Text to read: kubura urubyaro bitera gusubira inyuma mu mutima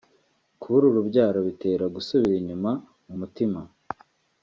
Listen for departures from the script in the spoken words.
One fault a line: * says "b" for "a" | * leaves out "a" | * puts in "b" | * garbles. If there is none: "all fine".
all fine